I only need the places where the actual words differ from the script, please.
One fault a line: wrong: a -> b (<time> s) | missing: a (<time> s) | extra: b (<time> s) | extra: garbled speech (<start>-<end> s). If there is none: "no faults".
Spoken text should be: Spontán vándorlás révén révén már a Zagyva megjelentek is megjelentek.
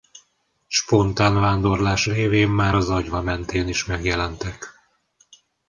missing: révén (2.5 s)
wrong: megjelentek -> mentén (3.2 s)